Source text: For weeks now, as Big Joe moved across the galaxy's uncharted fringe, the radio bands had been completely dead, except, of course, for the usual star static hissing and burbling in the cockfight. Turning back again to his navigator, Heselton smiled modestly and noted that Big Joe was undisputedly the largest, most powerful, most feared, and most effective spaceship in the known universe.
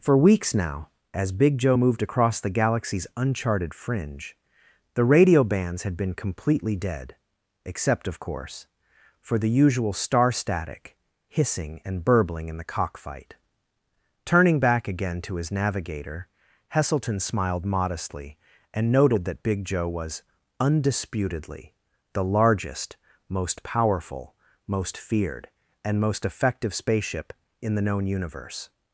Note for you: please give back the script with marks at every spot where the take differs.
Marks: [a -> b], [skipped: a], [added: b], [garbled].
For weeks now, as Big Joe moved across the galaxy's uncharted fringe, the radio bands had been completely dead, except, of course, for the usual star static hissing and burbling in the cockfight. Turning back again to his navigator, Heselton smiled modestly and noted that Big Joe was undisputedly the largest, most powerful, most feared, and most effective spaceship in the known universe.